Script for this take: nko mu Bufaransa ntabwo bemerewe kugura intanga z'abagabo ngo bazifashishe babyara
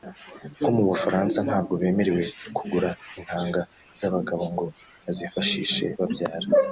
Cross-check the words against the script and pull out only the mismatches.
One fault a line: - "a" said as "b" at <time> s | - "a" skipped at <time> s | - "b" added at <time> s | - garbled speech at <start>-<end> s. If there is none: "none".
none